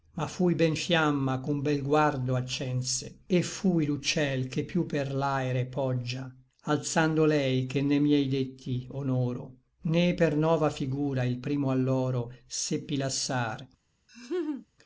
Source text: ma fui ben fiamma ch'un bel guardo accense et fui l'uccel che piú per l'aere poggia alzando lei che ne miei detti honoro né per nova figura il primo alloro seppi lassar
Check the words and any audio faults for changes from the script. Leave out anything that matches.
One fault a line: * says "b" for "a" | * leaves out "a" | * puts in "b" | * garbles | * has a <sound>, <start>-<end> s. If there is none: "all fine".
* has a laugh, 14.1-14.7 s